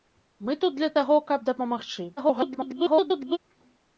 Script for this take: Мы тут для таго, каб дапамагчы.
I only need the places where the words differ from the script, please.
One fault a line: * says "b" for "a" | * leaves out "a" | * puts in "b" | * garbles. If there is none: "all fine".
* garbles